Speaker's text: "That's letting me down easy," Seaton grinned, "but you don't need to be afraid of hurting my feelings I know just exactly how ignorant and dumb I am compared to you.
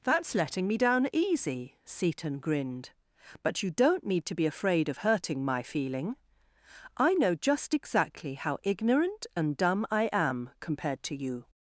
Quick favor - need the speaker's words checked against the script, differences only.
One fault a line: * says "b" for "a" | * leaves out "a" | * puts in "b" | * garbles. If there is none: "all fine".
* says "feeling" for "feelings"